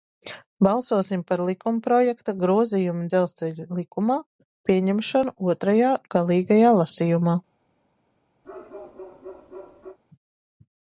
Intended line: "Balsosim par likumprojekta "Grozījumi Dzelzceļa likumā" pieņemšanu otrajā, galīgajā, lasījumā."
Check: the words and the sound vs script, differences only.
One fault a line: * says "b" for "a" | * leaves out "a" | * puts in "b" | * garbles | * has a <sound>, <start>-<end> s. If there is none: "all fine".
* has a bark, 8.4-10.0 s